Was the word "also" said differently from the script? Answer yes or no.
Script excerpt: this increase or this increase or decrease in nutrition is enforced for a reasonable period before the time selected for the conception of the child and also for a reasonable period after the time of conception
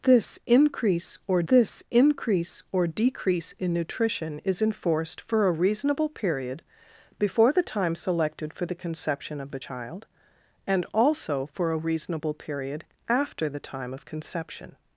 no